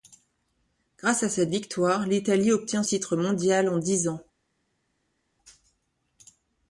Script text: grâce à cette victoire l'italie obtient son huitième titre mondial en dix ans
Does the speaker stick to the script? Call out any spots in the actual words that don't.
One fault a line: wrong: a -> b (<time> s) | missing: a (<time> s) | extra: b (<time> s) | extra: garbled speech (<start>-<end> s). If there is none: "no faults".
missing: son huitième (2.8 s)